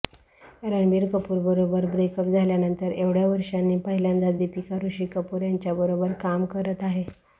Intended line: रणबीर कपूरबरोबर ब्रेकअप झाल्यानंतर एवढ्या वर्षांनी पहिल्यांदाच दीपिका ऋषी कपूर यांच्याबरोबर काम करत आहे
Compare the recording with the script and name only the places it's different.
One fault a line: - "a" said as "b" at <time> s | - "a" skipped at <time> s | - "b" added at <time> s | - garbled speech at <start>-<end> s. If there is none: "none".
none